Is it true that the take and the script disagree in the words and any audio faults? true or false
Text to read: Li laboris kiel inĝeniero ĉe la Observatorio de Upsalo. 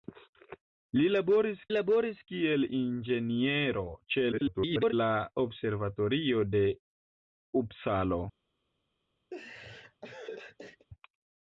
true